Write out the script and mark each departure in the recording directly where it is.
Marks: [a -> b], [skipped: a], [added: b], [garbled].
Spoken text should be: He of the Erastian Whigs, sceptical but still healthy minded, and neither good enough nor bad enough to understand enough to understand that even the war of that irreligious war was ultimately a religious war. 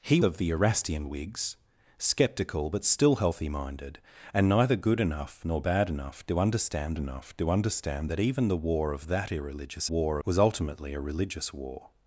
He of the Erastian Whigs, sceptical but still healthy minded, and neither good enough nor bad enough to understand enough to understand that even the war of that irreligious war was ultimately a religious war.